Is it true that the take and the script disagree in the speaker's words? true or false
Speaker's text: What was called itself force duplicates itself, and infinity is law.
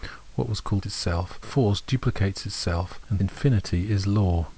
false